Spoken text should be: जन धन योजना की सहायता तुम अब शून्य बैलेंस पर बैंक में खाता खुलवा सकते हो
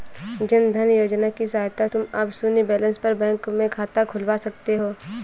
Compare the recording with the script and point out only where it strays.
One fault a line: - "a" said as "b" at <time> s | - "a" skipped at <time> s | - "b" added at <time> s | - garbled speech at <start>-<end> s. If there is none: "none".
none